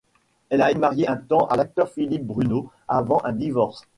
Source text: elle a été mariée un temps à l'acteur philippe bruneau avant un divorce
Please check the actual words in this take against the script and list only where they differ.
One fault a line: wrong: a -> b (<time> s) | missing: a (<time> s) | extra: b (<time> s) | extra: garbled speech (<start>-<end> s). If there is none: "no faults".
missing: été (0.7 s)